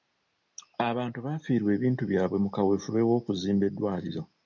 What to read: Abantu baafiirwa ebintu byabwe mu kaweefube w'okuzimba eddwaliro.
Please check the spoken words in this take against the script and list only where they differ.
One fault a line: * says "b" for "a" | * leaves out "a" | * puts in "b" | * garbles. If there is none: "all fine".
all fine